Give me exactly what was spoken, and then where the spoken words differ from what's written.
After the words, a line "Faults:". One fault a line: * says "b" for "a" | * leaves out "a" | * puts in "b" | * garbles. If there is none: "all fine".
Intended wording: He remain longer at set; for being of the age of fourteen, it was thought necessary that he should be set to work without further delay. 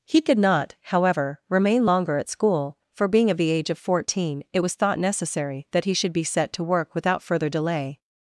He could not, however, remain longer at school; for being of the age of fourteen, it was thought necessary that he should be set to work without further delay.
Faults:
* puts in "could not however"
* says "school" for "set"